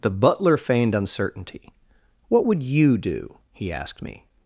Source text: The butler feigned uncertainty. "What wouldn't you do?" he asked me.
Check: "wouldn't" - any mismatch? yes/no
yes